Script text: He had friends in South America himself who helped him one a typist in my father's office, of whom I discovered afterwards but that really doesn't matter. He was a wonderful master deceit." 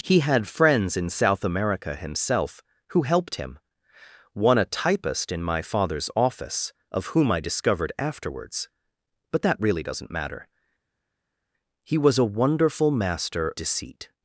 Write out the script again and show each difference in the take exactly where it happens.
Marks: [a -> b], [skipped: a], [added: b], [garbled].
He had friends in South America himself who helped him one a typist in my father's office, of whom I discovered afterwards but that really doesn't matter. He was a wonderful master deceit."